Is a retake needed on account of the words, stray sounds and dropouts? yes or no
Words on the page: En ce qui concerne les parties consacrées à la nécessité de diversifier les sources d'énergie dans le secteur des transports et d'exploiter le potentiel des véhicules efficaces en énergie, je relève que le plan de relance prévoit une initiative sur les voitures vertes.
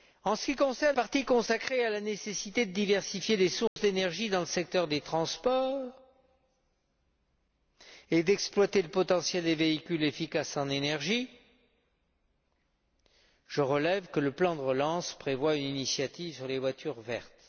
yes